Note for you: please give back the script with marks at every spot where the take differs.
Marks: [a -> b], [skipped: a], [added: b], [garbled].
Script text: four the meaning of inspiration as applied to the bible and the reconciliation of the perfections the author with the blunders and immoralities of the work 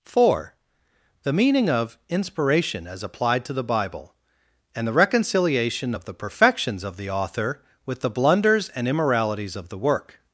four the meaning of inspiration as applied to the bible and the reconciliation of the perfections [added: of] the author with the blunders and immoralities of the work